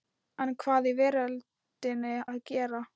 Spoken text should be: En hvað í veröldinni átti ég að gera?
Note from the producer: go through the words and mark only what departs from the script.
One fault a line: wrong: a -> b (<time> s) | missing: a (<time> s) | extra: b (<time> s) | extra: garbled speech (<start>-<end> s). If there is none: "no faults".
missing: átti ég (2.1 s)